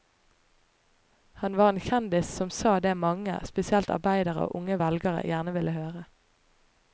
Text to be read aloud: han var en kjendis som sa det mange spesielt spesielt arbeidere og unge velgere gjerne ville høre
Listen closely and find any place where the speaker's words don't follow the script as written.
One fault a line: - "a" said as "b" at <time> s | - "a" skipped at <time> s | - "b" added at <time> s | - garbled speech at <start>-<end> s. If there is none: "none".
- "spesielt" skipped at 3.9 s